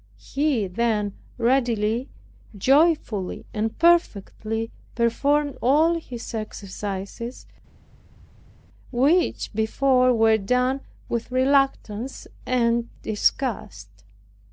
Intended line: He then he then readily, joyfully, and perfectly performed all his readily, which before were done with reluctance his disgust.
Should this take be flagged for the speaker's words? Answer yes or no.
yes